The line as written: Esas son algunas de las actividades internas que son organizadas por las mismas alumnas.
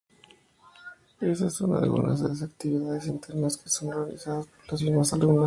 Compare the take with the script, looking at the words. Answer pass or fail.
pass